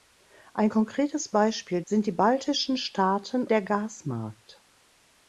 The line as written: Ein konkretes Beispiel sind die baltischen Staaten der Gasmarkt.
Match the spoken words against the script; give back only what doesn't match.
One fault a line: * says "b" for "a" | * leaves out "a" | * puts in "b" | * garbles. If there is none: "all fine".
all fine